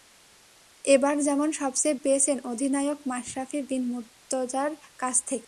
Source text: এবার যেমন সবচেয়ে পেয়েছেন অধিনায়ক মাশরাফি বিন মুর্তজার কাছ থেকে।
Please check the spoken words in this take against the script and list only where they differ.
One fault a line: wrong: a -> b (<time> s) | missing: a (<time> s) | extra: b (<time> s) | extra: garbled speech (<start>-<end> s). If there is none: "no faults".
no faults